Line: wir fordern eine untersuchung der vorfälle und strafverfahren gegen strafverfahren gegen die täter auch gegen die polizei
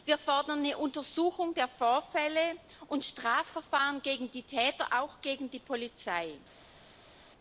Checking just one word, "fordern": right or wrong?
right